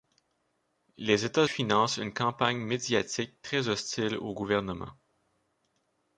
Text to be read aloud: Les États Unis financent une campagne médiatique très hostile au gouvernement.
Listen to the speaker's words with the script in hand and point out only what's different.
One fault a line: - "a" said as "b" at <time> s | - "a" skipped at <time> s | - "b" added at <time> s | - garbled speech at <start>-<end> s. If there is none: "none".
- "Unis" skipped at 1.4 s